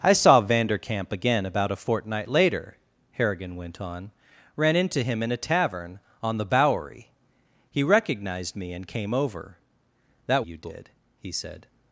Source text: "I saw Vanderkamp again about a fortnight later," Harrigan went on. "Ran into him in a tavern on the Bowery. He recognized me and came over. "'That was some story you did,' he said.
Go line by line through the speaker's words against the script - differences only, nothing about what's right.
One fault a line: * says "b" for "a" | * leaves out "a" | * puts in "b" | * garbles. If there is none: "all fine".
* leaves out "was some story"